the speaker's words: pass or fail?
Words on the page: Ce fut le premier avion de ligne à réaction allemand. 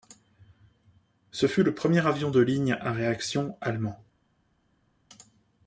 pass